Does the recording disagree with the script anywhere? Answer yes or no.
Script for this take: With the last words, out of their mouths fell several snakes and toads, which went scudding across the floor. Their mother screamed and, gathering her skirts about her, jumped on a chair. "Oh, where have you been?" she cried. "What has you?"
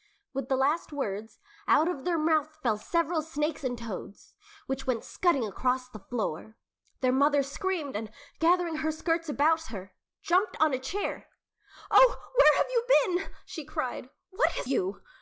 no